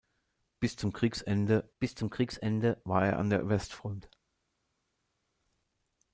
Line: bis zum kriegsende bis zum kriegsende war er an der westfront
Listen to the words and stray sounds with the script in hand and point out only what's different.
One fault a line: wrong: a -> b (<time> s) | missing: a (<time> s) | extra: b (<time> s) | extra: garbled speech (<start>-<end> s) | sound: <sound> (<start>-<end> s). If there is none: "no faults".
no faults